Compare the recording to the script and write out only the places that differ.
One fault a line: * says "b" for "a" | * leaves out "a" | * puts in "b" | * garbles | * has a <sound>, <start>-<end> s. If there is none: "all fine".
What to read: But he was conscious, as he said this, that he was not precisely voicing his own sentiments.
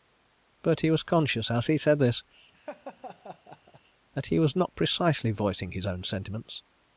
* has a laugh, 2.5-3.8 s